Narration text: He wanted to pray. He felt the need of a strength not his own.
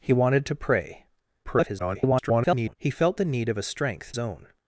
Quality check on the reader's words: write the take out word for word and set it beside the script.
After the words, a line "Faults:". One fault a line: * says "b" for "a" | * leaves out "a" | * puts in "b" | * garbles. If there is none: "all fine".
He wanted to pray. [garbled] He felt the need of a strength own.
Faults:
* garbles
* leaves out "not his"